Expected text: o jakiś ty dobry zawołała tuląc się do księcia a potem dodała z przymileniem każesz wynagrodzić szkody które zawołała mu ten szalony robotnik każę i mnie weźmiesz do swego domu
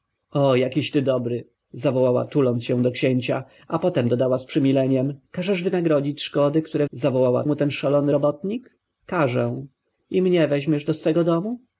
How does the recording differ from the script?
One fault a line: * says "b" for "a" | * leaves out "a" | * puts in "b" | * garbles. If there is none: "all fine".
all fine